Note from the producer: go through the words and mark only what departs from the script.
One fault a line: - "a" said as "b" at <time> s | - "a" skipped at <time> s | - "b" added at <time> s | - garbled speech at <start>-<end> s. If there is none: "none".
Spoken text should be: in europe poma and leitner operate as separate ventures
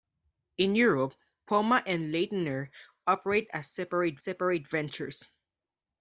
- "separate" added at 4.2 s